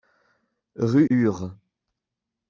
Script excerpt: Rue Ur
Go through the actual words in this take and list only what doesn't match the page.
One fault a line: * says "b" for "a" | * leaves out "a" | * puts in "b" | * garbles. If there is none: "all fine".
all fine